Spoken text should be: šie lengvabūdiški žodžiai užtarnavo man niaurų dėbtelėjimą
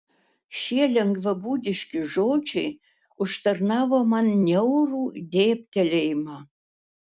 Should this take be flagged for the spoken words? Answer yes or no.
no